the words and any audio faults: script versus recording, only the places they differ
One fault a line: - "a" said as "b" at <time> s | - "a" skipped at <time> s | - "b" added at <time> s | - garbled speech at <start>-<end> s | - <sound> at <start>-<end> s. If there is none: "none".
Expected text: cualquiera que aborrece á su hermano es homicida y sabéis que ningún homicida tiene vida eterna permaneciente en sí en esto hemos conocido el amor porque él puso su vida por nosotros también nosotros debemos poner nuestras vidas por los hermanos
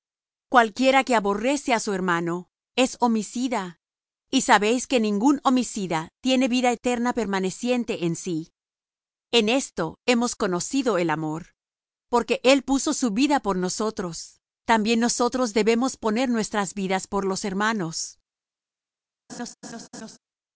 - laugh at 19.3-20.2 s